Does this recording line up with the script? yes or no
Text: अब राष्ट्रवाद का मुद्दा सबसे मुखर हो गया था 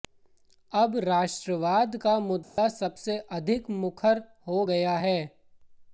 no